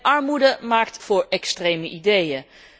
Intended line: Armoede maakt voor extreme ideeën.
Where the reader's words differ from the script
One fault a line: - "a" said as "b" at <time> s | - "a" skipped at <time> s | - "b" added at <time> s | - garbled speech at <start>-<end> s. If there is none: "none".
none